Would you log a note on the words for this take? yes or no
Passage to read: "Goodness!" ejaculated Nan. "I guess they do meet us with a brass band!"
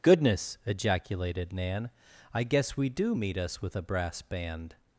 yes